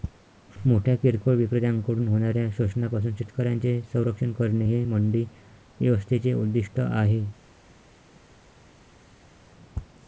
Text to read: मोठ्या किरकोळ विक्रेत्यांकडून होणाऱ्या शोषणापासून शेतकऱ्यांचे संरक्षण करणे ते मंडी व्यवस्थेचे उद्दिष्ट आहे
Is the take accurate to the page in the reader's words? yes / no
no